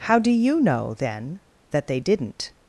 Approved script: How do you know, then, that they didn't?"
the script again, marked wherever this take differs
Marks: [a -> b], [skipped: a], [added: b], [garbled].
How do you know, then, that they didn't?"